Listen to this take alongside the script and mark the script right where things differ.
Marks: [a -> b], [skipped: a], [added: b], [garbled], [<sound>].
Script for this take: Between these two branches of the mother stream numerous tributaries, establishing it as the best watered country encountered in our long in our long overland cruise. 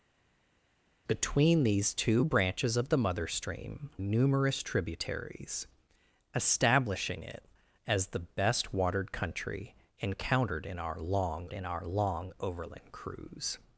Between these two branches of the mother stream numerous tributaries, establishing it as the best watered country encountered in our long in our long overland cruise.